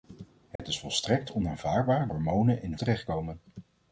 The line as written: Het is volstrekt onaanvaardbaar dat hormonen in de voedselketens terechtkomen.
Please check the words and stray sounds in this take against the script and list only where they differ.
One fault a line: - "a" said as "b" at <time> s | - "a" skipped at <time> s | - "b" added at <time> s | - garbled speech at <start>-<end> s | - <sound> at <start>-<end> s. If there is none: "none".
- dropout at 0.6-0.6 s
- "dat" skipped at 2.1 s
- "voedselketens" skipped at 2.8 s